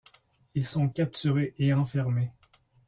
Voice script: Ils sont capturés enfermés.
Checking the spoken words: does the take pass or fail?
fail